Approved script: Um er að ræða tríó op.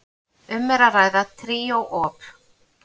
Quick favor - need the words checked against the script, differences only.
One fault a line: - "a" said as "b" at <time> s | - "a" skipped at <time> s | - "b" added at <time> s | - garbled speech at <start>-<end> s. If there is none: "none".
none